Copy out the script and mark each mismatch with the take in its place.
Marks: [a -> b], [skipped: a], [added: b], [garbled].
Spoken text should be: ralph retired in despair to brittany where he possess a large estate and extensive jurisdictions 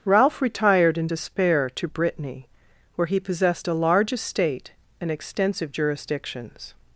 ralph retired in despair to brittany where he [possess -> possessed] a large estate and extensive jurisdictions